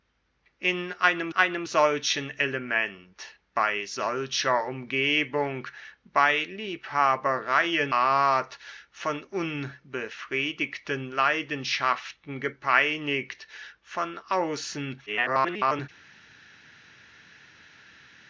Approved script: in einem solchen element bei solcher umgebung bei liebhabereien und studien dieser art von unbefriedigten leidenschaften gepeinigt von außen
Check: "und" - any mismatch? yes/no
yes